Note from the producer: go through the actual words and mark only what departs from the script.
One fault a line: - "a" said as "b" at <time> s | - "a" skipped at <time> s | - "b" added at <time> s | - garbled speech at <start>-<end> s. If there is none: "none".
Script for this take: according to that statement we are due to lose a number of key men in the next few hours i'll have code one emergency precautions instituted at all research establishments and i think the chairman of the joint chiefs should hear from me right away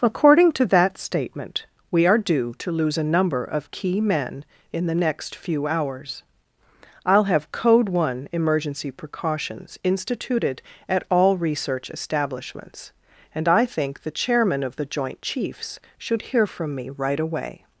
none